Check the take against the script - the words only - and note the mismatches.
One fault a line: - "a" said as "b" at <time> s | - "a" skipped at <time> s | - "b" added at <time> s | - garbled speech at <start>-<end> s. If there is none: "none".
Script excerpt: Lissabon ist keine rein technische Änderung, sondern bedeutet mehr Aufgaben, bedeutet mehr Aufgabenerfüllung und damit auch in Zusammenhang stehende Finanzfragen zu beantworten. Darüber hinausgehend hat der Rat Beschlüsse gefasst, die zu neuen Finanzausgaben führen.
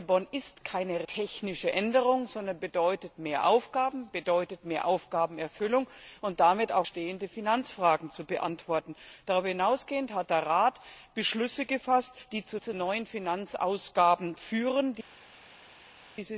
- "rein" skipped at 1.1 s
- "in Zusammenhang" skipped at 6.9 s
- "zu" added at 12.6 s